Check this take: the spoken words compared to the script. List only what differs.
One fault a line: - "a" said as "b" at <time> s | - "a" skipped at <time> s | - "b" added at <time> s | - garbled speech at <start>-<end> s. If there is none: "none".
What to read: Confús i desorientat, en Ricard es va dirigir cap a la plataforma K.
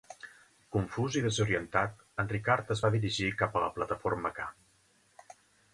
none